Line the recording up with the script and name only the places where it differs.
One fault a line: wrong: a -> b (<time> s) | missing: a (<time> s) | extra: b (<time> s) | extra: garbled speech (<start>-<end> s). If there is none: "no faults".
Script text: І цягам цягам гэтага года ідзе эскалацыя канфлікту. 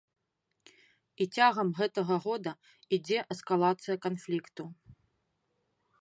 missing: цягам (1.7 s)